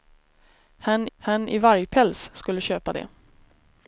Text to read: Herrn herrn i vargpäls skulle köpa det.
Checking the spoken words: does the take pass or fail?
pass